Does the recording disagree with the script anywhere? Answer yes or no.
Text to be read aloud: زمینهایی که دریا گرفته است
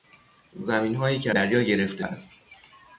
no